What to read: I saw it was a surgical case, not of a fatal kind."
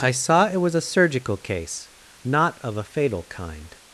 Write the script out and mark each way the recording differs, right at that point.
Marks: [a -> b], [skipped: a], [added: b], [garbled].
I saw it was a surgical case, not of a fatal kind."